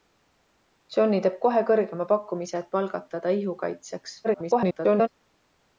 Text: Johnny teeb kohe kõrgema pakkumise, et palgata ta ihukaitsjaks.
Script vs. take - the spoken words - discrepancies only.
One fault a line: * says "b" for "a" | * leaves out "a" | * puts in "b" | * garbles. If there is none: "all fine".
* garbles